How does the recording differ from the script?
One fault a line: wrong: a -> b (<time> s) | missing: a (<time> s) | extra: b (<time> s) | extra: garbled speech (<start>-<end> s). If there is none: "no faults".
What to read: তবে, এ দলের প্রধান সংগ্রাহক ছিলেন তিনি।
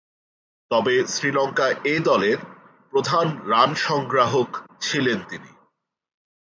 extra: শ্রীলঙ্কা (1.1 s)
extra: রান (3.5 s)